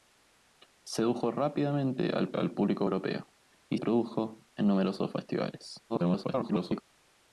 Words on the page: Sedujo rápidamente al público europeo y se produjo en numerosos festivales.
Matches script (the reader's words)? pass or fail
fail